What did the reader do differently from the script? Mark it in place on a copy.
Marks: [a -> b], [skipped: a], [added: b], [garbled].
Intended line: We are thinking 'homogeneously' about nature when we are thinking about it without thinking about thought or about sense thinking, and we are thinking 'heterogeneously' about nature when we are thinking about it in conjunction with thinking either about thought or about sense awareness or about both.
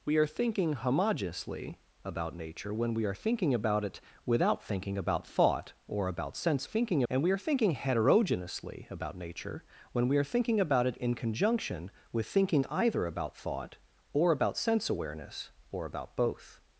We are thinking 'homogeneously' about nature when we are thinking about it without thinking about thought or about sense thinking, and we are thinking 'heterogeneously' about nature when we are thinking about it in conjunction with thinking either about thought or about sense awareness or about both.